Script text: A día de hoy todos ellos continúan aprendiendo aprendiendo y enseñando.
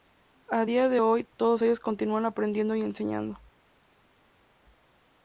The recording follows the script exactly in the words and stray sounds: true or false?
false